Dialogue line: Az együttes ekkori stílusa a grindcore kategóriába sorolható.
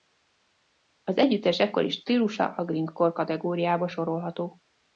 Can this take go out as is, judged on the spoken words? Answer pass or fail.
pass